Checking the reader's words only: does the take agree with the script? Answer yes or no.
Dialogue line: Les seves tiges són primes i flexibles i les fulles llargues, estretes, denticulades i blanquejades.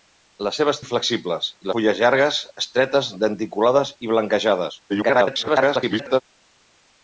no